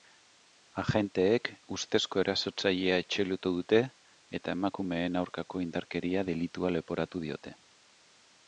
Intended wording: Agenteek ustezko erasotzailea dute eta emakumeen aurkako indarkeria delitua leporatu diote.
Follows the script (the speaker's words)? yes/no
no